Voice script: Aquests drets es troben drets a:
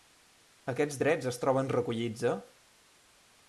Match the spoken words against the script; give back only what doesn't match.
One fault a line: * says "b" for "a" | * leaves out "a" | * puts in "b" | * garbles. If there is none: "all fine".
* says "recollits" for "drets"